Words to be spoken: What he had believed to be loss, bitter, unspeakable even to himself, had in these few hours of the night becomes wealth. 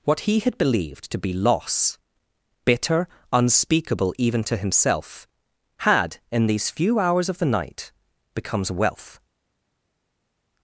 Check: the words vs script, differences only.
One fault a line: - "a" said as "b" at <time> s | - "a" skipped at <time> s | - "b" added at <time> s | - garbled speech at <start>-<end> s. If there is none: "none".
none